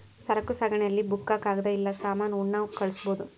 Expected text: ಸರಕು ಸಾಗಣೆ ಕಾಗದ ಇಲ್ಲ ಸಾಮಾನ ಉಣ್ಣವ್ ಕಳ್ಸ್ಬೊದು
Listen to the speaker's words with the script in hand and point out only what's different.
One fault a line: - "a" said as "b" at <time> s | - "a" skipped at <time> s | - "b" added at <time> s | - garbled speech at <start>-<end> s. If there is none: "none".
- "ಅಲ್ಲಿ ಬುಕ್ಕ" added at 0.8 s